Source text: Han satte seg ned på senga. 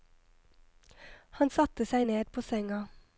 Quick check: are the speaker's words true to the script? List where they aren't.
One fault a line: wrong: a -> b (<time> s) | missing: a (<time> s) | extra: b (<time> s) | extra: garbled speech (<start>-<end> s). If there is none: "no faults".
no faults